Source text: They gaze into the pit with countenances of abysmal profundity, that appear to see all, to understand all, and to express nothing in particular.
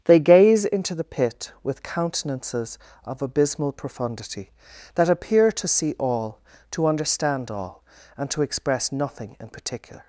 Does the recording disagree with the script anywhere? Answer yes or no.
no